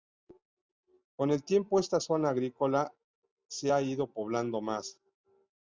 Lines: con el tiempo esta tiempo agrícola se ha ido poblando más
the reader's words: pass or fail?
fail